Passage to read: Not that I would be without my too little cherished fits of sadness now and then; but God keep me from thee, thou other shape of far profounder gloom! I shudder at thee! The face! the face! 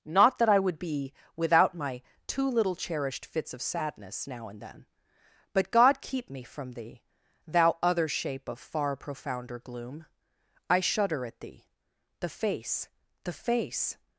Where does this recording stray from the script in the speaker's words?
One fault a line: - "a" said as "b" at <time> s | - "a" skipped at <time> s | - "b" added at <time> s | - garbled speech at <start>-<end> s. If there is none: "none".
none